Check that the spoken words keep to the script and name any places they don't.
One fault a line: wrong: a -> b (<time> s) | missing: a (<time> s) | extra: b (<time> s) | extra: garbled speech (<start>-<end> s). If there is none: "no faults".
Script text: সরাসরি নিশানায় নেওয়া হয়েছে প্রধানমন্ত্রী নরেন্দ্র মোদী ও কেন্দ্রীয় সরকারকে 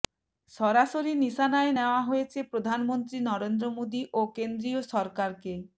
no faults